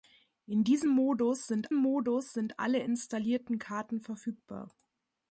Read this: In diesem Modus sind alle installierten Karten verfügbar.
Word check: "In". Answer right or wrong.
right